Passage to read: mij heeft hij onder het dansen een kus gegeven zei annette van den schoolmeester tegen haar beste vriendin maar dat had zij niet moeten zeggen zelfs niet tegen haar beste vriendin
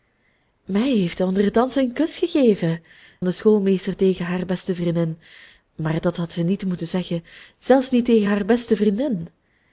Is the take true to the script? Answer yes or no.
no